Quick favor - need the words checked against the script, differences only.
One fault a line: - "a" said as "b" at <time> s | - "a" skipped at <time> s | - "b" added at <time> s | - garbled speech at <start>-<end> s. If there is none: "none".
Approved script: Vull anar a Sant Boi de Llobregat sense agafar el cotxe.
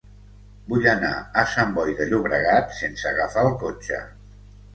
none